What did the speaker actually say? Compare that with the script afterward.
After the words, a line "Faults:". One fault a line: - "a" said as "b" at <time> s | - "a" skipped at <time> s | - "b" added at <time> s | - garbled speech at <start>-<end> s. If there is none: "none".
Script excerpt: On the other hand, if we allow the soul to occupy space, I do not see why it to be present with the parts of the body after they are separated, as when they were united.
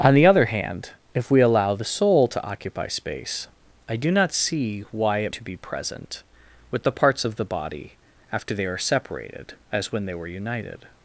On the other hand, if we allow the soul to occupy space, I do not see why it to be present with the parts of the body after they are separated, as when they were united.
Faults:
none